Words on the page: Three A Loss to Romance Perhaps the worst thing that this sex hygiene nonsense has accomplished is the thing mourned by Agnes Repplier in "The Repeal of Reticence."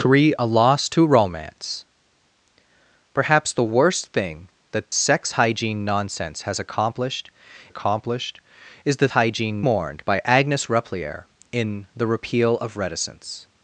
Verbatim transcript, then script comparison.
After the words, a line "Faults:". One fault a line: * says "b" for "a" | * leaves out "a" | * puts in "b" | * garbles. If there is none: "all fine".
Three A Loss to Romance Perhaps the worst thing that sex hygiene nonsense has accomplished accomplished is the hygiene mourned by Agnes Repplier in "The Repeal of Reticence."
Faults:
* leaves out "this"
* puts in "accomplished"
* says "hygiene" for "thing"